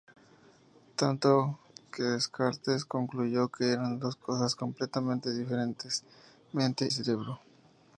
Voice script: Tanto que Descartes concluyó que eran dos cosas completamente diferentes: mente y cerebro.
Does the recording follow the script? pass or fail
fail